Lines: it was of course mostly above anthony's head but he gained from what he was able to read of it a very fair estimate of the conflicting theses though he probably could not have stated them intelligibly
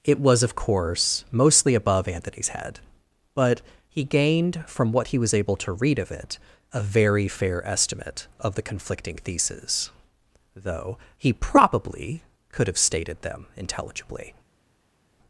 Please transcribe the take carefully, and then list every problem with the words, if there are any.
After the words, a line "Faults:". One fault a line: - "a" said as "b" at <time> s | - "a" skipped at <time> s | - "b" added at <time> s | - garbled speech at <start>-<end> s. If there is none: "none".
it was of course mostly above anthony's head but he gained from what he was able to read of it a very fair estimate of the conflicting theses though he probably could have stated them intelligibly
Faults:
- "not" skipped at 12.7 s